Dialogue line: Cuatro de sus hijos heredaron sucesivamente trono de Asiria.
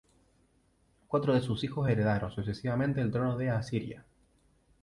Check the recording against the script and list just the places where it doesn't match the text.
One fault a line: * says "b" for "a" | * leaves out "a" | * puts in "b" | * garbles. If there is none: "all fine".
* puts in "el"